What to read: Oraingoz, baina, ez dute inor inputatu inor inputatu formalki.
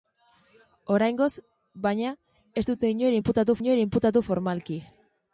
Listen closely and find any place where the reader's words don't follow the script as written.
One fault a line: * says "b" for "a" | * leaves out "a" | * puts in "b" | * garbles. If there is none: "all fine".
all fine